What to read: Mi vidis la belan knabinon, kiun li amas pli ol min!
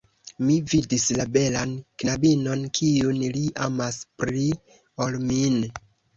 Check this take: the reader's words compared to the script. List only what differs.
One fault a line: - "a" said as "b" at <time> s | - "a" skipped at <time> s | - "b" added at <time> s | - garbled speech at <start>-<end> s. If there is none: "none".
none